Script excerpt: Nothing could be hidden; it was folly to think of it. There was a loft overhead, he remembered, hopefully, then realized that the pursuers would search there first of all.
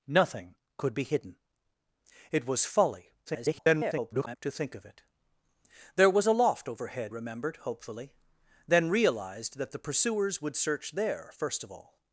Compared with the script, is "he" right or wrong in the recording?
wrong